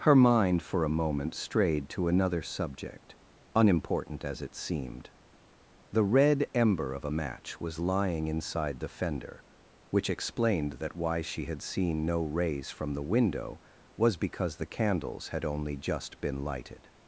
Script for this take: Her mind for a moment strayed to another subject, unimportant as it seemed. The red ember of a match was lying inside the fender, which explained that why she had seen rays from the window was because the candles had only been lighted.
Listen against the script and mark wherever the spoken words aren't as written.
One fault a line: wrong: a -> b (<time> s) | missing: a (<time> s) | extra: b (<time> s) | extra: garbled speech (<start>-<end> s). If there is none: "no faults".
extra: no (12.0 s)
extra: just (15.8 s)